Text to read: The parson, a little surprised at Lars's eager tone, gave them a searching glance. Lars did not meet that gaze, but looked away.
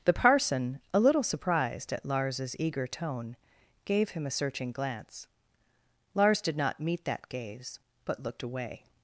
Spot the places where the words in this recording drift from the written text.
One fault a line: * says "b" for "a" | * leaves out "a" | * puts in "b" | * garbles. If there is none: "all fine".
* says "him" for "them"